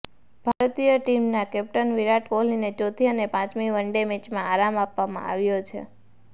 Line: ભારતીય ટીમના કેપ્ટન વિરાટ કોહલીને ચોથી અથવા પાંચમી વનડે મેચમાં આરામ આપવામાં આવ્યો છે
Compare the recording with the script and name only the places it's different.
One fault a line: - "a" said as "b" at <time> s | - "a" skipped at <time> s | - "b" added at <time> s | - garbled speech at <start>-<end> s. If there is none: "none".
- "અથવા" said as "અને" at 3.1 s